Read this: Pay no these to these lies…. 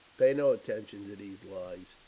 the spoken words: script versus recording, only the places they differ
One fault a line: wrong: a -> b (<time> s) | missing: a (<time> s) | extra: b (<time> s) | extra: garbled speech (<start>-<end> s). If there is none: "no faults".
wrong: these -> attention (0.5 s)